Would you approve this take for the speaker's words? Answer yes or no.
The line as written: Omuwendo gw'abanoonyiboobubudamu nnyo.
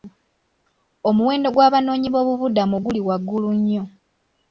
no